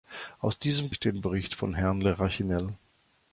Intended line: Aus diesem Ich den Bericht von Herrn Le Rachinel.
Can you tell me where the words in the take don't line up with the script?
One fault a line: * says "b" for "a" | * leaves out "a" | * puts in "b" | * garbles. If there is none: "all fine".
all fine